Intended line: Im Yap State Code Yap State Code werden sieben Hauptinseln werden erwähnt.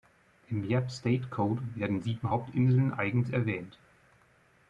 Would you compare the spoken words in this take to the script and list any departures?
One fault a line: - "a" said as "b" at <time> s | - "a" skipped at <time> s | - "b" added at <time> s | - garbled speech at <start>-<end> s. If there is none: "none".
- "Yap State Code" skipped at 1.6 s
- "werden" said as "eigens" at 2.9 s